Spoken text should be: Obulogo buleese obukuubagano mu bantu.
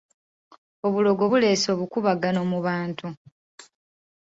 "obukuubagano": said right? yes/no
yes